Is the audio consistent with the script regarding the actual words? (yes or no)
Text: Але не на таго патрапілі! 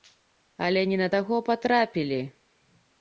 yes